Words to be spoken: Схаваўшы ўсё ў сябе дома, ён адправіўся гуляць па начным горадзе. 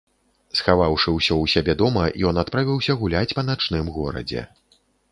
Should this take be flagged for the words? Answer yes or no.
no